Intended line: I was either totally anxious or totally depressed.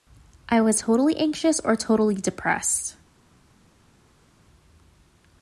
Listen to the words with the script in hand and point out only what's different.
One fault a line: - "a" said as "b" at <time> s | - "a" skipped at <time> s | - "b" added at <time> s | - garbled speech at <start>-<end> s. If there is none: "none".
- "either" skipped at 0.8 s